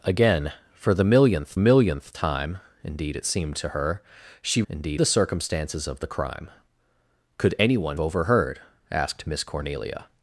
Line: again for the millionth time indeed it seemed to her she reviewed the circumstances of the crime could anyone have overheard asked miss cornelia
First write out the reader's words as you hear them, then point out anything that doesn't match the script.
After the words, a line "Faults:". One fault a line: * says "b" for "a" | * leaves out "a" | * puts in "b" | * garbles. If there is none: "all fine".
again for the millionth millionth time indeed it seemed to her she indeed the circumstances of the crime could anyone overheard asked miss cornelia
Faults:
* puts in "millionth"
* says "indeed" for "reviewed"
* leaves out "have"